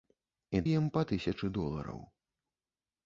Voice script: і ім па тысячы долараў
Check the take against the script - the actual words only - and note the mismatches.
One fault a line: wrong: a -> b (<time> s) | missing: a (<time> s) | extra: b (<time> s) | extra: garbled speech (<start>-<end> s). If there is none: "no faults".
no faults